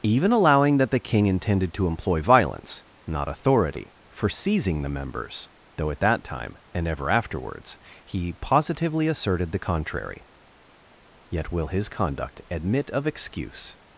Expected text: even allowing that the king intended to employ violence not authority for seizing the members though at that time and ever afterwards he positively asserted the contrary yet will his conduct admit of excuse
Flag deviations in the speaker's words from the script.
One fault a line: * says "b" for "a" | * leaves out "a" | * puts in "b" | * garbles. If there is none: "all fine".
all fine